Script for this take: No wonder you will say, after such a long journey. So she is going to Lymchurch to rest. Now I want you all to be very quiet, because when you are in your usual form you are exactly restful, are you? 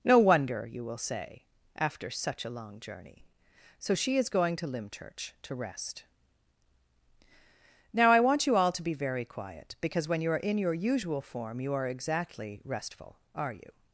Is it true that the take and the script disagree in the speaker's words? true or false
false